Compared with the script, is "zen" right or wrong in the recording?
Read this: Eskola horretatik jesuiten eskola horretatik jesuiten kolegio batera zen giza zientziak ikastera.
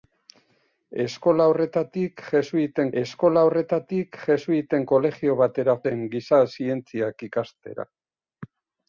right